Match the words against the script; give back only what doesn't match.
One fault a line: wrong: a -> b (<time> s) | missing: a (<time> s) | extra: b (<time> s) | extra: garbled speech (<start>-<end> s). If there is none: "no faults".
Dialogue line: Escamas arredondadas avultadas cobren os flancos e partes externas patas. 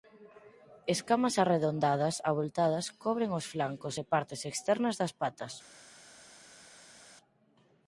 extra: das (5.0 s)